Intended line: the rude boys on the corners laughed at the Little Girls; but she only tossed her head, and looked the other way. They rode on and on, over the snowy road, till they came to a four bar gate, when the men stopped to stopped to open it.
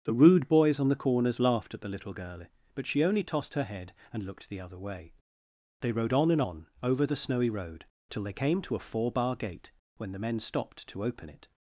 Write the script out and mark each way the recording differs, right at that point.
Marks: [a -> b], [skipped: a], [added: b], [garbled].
the rude boys on the corners laughed at the Little [Girls; -> Girl] but she only tossed her head, and looked the other way. They rode on and on, over the snowy road, till they came to a four bar gate, when the men stopped to [skipped: stopped to] open it.